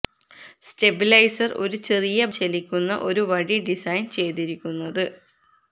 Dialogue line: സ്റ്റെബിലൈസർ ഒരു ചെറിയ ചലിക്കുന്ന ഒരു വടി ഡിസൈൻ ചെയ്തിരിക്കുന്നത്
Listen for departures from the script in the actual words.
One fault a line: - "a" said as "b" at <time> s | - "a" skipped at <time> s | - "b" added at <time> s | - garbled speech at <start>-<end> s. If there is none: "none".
none